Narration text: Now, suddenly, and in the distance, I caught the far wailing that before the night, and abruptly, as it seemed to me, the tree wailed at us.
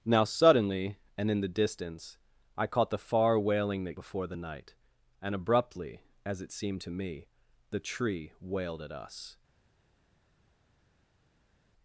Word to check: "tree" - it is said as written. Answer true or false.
true